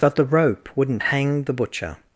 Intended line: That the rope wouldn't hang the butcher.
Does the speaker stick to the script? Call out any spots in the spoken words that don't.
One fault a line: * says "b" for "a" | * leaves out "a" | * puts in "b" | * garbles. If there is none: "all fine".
all fine